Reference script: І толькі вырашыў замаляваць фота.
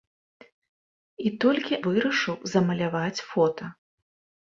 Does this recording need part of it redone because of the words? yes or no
no